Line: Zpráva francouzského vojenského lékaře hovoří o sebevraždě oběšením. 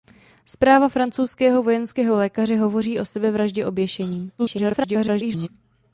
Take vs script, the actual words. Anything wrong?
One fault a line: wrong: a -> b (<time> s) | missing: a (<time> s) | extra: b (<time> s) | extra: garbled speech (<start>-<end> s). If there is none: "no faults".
extra: garbled speech (4.4-5.5 s)